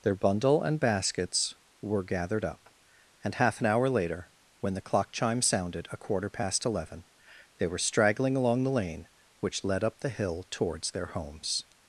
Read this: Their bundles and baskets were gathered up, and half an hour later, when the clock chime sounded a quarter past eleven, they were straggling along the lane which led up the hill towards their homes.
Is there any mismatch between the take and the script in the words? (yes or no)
yes